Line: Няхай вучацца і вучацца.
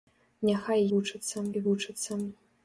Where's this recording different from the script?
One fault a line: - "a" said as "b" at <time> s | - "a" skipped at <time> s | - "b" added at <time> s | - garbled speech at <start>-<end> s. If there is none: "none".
none